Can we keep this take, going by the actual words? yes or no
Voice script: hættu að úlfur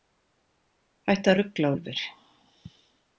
no